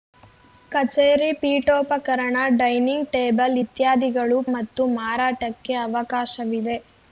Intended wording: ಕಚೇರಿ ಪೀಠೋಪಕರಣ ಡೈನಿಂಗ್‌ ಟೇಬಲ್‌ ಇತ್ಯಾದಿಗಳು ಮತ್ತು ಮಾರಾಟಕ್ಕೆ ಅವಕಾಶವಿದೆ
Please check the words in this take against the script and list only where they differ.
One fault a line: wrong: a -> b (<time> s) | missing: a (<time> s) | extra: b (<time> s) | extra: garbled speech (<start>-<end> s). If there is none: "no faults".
no faults